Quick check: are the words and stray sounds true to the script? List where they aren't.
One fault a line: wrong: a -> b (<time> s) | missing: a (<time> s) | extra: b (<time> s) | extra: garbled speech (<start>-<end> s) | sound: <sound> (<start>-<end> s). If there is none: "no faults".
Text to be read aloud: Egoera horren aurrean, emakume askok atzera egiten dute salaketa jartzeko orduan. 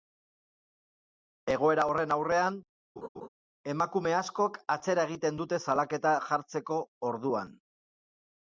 sound: laugh (3.0-3.3 s)